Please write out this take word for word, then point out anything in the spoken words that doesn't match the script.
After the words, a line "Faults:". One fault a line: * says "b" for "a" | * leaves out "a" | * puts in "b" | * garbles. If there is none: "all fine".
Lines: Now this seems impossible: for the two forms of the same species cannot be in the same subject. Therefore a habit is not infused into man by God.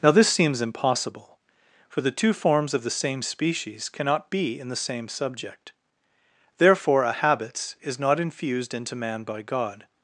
Now this seems impossible: for the two forms of the same species cannot be in the same subject. Therefore a habits is not infused into man by God.
Faults:
* says "habits" for "habit"